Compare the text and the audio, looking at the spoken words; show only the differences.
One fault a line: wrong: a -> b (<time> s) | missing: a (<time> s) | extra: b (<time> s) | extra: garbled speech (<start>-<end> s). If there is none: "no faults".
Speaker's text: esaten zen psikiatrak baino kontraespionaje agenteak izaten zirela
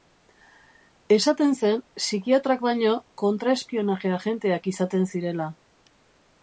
no faults